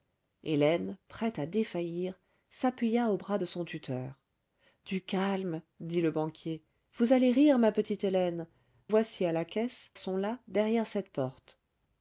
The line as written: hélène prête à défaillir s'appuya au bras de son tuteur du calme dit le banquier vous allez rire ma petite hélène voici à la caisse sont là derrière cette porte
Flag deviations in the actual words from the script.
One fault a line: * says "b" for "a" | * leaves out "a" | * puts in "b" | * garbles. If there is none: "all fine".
all fine